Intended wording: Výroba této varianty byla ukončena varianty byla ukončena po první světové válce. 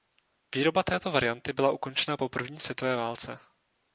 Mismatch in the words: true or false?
true